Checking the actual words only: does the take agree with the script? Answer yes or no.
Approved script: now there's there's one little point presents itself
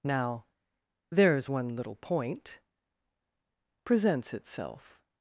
no